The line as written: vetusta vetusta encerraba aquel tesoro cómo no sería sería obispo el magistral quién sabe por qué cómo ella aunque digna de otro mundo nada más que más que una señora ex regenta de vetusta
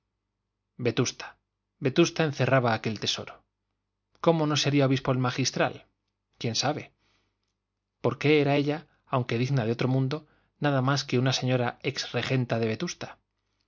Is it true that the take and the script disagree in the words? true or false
true